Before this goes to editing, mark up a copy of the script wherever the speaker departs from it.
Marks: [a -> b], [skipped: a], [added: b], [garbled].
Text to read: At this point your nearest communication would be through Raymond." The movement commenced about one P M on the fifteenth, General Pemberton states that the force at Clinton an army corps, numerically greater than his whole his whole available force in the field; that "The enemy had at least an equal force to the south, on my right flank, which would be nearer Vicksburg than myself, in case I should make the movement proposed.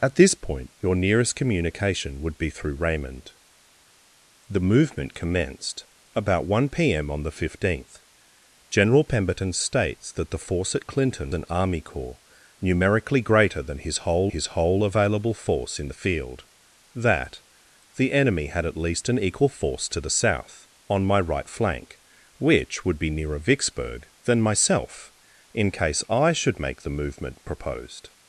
At this point your nearest communication would be through Raymond." The movement commenced about one P M on the fifteenth, General Pemberton states that the force at Clinton an army corps, numerically greater than his whole his whole available force in the field; that "The enemy had at least an equal force to the south, on my right flank, which would be nearer Vicksburg than myself, in case I should make the movement proposed.